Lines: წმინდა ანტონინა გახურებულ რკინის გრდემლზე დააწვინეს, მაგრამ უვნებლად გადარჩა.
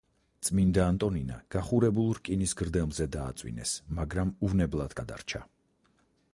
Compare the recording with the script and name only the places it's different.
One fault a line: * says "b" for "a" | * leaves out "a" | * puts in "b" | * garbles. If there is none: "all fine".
all fine